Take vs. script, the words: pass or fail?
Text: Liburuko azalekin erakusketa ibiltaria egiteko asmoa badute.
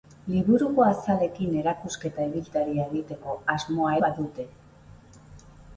pass